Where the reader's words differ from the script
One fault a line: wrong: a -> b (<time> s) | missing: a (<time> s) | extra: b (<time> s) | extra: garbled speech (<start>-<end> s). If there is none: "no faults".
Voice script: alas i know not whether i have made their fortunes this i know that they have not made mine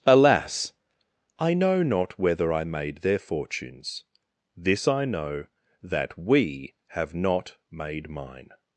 missing: have (2.6 s)
wrong: they -> we (6.2 s)